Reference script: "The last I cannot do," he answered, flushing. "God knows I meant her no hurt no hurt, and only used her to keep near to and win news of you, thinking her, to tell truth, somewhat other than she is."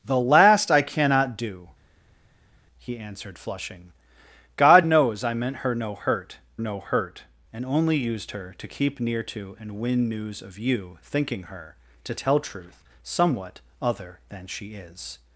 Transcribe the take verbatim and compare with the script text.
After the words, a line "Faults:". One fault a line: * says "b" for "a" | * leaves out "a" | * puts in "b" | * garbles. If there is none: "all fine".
"The last I cannot do," he answered, flushing. "God knows I meant her no hurt no hurt, and only used her to keep near to and win news of you, thinking her, to tell truth, somewhat other than she is."
Faults:
all fine